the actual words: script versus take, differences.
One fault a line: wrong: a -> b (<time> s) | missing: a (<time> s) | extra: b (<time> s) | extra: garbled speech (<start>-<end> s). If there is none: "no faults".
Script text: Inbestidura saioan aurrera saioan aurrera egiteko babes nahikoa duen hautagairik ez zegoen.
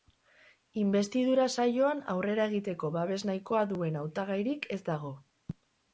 missing: saioan aurrera (2.5 s)
wrong: zegoen -> dago (4.9 s)